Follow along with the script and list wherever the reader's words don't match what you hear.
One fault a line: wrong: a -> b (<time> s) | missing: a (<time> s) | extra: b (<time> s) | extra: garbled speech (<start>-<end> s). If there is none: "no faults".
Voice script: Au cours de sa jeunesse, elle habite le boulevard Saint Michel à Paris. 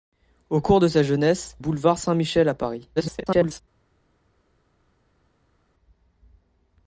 missing: elle habite le (1.6 s)
extra: garbled speech (3.0-3.6 s)